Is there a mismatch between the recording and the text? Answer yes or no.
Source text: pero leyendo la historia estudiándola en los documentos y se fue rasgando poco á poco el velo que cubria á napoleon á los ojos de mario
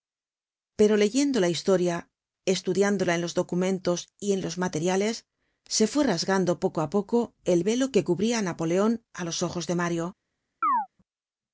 yes